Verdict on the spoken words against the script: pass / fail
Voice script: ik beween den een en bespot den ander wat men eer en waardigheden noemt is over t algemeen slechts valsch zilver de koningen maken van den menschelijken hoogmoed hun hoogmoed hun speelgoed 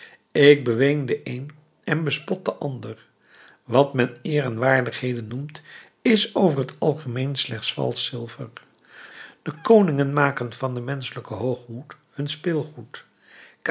fail